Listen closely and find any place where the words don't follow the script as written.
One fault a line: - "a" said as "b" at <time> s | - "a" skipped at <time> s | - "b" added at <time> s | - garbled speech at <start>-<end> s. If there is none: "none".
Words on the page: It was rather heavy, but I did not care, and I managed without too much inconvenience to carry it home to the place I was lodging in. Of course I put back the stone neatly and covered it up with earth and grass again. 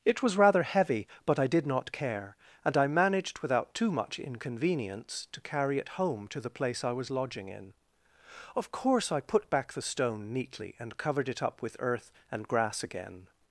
none